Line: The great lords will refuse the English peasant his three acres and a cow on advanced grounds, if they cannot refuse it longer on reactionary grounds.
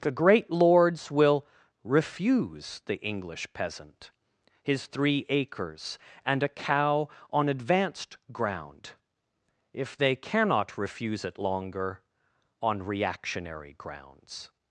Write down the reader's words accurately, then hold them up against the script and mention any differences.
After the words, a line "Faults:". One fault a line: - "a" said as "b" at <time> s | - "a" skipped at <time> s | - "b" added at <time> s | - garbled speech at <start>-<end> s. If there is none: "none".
The great lords will refuse the English peasant his three acres and a cow on advanced ground, if they cannot refuse it longer on reactionary grounds.
Faults:
- "grounds" said as "ground" at 8.3 s